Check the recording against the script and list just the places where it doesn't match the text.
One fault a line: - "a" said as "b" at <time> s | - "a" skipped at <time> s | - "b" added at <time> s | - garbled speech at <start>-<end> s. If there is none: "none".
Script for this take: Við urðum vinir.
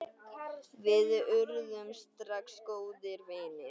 - "strax góðir" added at 2.0 s